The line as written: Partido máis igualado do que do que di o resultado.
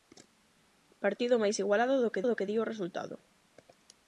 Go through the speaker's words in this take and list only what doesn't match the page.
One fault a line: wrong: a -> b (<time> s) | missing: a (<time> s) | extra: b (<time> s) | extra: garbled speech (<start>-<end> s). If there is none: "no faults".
no faults